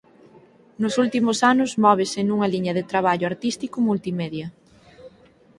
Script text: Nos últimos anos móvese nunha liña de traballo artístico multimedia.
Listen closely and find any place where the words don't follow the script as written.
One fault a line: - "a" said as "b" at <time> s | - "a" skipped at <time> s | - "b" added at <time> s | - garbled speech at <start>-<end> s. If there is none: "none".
none